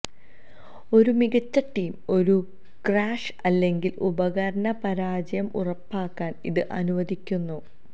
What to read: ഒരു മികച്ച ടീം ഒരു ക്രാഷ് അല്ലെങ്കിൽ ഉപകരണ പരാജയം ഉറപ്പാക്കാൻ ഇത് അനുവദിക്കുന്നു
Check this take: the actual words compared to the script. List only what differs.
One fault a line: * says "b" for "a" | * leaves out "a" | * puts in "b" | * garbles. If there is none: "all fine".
all fine